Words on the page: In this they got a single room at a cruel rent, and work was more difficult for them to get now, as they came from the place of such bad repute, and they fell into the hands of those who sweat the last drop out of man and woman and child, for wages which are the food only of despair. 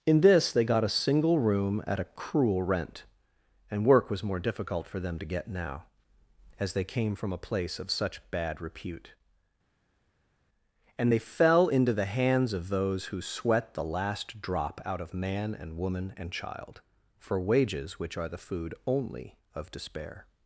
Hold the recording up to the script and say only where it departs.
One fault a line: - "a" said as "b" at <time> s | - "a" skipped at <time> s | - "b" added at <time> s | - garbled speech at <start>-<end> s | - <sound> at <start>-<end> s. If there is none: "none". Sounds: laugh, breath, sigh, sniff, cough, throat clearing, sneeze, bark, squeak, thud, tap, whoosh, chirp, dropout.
- "the" said as "a" at 7.3 s